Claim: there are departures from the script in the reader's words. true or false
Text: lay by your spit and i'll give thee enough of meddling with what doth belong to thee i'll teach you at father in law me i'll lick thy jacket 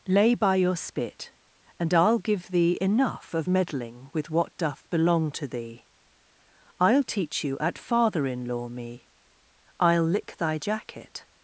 false